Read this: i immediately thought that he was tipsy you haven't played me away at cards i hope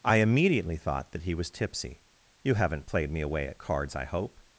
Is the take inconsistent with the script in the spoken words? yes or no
no